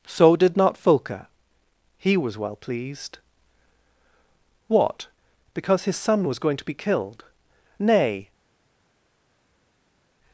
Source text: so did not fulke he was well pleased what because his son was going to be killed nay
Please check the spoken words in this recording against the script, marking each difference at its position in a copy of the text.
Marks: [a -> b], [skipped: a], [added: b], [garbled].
so did not fulke he was well pleased what because his son was going to be killed nay